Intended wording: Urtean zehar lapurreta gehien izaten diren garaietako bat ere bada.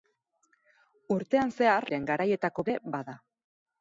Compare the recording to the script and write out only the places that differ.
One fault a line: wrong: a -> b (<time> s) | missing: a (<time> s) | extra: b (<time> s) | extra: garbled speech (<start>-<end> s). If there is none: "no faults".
missing: lapurreta gehien izaten (1.9 s)
missing: bat (2.7 s)